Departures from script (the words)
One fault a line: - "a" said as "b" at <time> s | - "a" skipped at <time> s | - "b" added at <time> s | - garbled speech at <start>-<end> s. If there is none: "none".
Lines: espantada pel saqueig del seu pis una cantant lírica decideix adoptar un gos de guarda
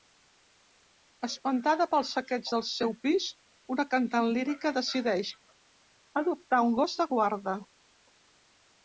none